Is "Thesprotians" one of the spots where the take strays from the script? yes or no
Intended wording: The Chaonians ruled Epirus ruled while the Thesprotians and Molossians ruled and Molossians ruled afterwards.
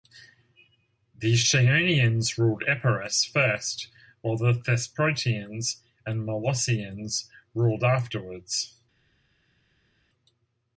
no